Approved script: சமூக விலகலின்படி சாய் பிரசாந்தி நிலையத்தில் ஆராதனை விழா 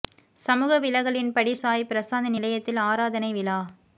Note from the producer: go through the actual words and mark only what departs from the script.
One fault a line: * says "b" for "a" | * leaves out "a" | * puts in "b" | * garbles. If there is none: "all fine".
all fine